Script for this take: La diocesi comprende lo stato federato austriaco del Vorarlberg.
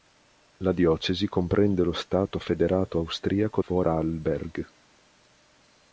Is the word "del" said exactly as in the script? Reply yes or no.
no